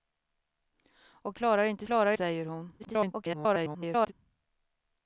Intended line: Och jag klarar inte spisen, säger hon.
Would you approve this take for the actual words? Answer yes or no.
no